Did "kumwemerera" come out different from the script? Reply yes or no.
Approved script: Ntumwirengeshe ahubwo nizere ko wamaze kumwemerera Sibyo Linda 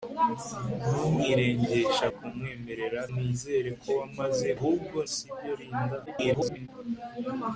yes